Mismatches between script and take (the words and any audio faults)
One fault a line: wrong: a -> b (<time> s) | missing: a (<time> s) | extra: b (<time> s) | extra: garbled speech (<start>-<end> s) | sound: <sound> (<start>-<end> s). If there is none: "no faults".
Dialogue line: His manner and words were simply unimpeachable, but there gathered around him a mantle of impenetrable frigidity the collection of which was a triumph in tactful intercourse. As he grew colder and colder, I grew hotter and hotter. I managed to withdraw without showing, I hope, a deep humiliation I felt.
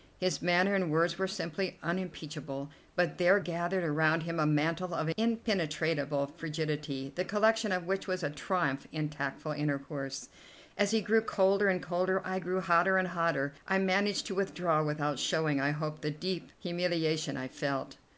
wrong: a -> the (16.0 s)